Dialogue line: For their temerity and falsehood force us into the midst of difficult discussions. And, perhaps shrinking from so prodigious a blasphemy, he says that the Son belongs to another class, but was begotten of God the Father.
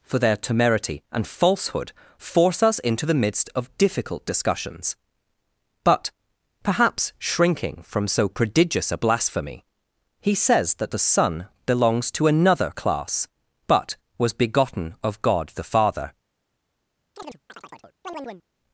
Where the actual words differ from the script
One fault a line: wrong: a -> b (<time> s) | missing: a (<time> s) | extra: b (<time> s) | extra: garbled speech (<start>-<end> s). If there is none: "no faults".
wrong: And -> But (5.8 s)